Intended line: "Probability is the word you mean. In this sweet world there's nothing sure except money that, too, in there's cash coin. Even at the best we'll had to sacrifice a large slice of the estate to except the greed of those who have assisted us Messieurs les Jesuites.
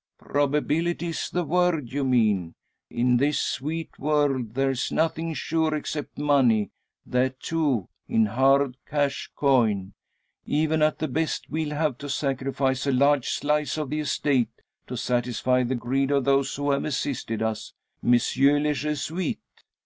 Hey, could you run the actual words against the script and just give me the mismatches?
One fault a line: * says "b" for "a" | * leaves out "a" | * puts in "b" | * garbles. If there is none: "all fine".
* says "hard" for "there's"
* says "have" for "had"
* says "satisfy" for "except"